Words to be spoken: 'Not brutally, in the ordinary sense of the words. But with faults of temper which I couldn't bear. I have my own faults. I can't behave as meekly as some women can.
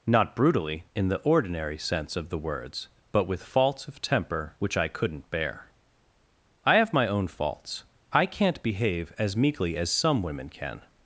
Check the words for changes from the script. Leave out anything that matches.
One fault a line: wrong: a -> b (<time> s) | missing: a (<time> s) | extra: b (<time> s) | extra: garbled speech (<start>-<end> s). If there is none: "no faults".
no faults